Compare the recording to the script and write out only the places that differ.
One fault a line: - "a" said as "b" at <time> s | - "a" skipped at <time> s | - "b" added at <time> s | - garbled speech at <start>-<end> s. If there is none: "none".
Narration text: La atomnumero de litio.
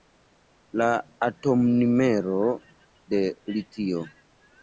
none